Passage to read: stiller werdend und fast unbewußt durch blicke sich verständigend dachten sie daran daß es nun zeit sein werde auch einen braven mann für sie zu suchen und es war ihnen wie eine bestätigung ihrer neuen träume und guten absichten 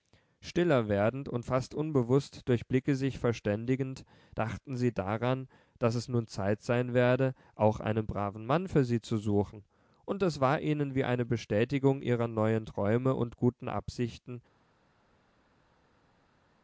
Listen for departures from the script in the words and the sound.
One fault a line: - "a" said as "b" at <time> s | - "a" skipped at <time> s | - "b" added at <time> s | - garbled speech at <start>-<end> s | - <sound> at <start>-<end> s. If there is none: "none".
none